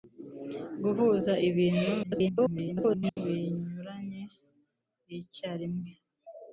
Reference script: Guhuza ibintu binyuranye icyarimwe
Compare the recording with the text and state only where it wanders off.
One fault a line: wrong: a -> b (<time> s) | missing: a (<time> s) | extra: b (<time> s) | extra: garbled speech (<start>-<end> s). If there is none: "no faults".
extra: garbled speech (2.0-3.2 s)